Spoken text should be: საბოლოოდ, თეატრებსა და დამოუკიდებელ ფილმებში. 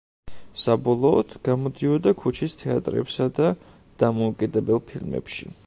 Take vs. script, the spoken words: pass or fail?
fail